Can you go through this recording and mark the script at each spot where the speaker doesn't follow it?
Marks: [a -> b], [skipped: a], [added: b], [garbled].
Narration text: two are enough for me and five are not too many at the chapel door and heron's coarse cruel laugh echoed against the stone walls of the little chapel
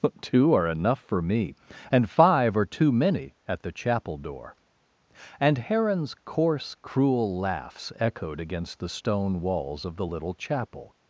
two are enough for me and five are [skipped: not] too many at the chapel door and heron's coarse cruel [laugh -> laughs] echoed against the stone walls of the little chapel